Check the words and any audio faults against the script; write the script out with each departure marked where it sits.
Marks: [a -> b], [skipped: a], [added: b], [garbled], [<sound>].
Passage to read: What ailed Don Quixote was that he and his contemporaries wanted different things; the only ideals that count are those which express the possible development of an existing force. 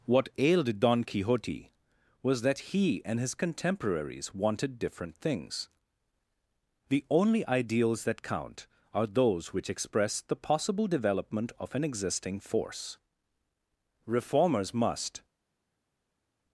What ailed Don Quixote was that he and his contemporaries wanted different things; the only ideals that count are those which express the possible development of an existing force. [added: Reformers must]